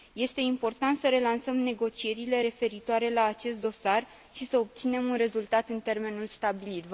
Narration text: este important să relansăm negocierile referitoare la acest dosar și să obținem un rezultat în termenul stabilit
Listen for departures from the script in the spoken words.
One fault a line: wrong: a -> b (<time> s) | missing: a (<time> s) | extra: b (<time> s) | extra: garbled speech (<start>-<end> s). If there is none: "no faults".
no faults